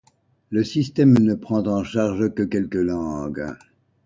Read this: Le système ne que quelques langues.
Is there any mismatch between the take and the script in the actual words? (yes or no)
yes